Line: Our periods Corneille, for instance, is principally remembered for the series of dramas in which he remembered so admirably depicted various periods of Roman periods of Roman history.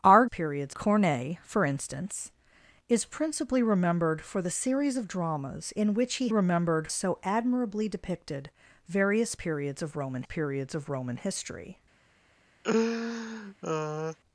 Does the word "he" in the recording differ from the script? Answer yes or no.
no